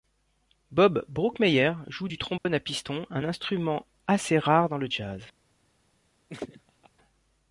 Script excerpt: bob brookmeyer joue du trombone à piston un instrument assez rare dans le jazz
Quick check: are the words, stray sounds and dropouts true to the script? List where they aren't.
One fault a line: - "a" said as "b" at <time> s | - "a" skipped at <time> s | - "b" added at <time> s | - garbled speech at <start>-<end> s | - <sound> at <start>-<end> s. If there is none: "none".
- dropout at 2.4-2.5 s
- laugh at 6.3-6.9 s